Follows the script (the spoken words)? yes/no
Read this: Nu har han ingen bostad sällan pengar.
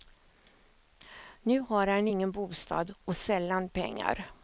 no